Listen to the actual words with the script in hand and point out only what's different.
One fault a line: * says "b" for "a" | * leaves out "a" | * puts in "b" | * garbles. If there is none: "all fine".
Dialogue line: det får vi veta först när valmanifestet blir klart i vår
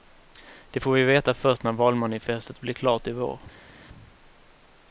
all fine